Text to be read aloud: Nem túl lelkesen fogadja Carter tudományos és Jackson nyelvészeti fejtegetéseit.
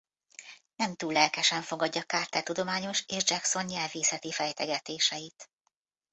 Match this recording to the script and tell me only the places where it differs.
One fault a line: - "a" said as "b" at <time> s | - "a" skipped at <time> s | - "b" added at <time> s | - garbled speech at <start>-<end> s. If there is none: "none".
none